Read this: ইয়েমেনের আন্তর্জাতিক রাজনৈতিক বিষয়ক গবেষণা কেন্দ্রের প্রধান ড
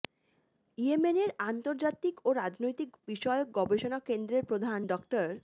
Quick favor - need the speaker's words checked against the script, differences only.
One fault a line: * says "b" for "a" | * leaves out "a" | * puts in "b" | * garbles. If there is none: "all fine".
* puts in "ও"